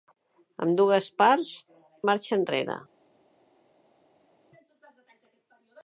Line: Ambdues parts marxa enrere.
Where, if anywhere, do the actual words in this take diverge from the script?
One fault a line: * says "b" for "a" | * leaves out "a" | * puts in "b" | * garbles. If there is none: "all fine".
all fine